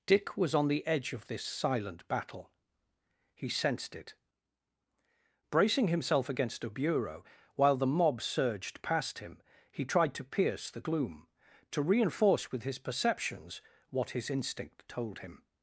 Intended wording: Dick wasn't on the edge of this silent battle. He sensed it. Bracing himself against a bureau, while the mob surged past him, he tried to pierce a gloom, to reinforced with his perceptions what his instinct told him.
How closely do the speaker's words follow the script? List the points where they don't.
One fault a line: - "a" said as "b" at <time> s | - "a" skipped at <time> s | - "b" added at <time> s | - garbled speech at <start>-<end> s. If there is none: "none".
- "wasn't" said as "was" at 0.3 s
- "a" said as "the" at 10.7 s
- "reinforced" said as "reinforce" at 11.8 s